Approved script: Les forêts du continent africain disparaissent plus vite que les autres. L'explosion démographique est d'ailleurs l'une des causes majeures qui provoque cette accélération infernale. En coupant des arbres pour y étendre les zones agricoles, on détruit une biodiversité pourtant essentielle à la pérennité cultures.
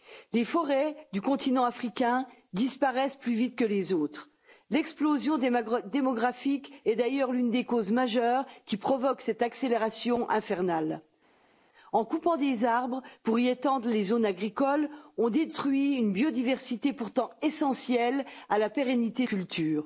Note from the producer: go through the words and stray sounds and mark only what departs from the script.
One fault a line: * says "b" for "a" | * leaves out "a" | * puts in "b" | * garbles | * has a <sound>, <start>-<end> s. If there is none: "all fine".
all fine